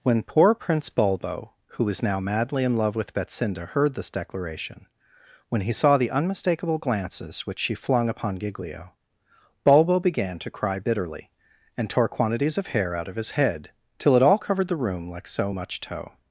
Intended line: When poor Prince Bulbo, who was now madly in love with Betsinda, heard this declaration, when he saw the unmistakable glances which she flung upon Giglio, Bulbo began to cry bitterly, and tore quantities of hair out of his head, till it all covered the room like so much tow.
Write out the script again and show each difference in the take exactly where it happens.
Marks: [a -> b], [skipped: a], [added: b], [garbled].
When poor Prince Bulbo, who was now madly in love with Betsinda, heard this declaration, when he saw the unmistakable glances which she flung upon Giglio, Bulbo began to cry bitterly, and tore quantities of hair out of his head, till it all covered the room like so much tow.